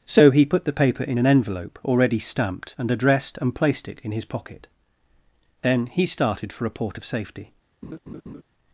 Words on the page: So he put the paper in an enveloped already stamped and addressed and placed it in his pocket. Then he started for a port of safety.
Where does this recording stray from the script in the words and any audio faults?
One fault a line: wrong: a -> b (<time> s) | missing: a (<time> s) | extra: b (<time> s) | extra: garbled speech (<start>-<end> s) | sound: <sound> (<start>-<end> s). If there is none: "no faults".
wrong: enveloped -> envelope (1.3 s)
sound: laugh (7.8-8.4 s)